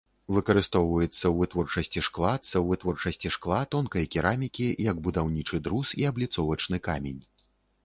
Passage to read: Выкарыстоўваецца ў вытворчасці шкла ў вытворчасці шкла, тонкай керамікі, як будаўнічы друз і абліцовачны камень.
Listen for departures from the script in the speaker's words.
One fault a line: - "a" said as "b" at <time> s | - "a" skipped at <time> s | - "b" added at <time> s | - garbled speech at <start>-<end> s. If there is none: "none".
none